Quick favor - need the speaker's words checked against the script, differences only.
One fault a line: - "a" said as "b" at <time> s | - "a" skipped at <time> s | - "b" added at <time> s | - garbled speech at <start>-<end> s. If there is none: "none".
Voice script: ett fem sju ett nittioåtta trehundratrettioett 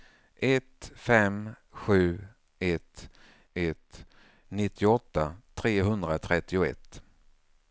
- "ett" added at 3.5 s